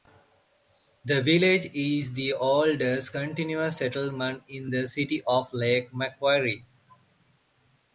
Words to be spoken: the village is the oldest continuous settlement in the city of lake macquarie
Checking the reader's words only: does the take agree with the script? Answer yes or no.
yes